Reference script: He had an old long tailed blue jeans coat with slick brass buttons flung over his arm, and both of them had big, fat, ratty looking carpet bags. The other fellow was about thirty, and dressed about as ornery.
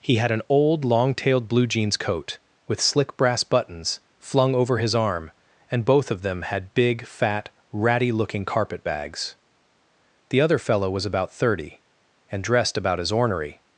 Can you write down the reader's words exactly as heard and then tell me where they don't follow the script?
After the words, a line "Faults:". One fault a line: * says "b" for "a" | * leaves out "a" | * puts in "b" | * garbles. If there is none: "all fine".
He had an old long tailed blue jeans coat with slick brass buttons flung over his arm, and both of them had big, fat, ratty looking carpet bags. The other fellow was about thirty, and dressed about as ornery.
Faults:
all fine